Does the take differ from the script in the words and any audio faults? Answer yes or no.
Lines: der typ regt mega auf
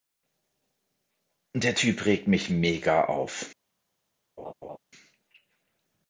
yes